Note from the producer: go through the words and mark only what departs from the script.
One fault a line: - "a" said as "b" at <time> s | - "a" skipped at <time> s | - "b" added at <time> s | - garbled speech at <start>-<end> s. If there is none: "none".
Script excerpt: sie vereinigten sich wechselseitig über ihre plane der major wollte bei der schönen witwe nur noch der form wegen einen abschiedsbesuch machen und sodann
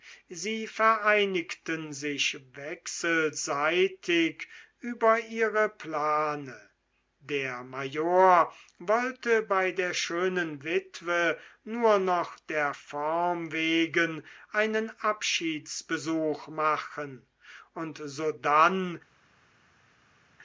none